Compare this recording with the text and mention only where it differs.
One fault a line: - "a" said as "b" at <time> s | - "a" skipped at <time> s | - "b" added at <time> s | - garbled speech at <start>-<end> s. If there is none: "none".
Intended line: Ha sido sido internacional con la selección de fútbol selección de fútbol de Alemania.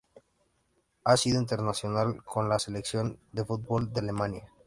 - "sido" skipped at 1.4 s
- "selección de fútbol" skipped at 3.9 s